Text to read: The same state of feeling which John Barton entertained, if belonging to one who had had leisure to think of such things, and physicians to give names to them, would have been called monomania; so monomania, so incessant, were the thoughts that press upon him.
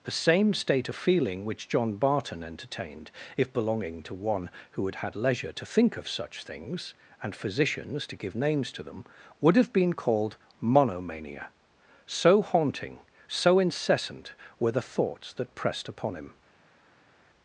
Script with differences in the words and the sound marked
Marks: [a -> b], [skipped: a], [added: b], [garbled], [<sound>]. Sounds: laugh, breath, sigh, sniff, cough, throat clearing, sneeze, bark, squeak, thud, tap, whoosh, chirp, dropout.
The same state of feeling which John Barton entertained, if belonging to one who had had leisure to think of such things, and physicians to give names to them, would have been called monomania; so [monomania, -> haunting] so incessant, were the thoughts that [press -> pressed] upon him.